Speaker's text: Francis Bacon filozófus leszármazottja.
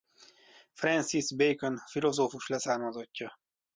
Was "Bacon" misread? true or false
false